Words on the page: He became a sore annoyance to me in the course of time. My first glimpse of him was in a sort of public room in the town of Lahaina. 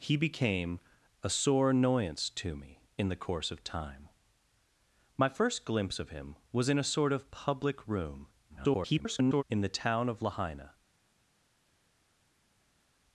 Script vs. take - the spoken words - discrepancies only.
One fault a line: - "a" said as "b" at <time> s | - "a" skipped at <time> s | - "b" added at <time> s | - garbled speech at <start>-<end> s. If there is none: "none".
- garbled speech at 8.5-9.4 s